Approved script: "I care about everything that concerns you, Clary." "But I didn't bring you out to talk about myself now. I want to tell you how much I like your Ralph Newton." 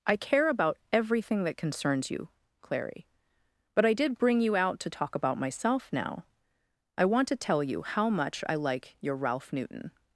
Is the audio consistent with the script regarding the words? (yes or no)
no